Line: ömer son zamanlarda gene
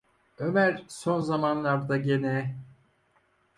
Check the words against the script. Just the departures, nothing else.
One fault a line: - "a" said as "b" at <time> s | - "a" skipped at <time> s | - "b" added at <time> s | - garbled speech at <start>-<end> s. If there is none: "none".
none